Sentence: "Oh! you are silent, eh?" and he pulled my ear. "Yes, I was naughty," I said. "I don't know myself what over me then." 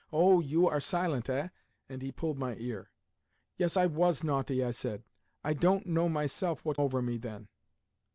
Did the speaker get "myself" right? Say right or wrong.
right